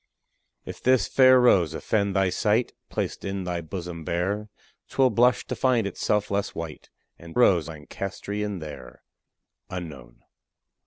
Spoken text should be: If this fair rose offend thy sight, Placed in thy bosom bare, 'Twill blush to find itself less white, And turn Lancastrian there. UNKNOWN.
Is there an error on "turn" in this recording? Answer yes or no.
yes